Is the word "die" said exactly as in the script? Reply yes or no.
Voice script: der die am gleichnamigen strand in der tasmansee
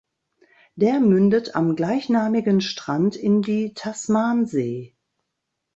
no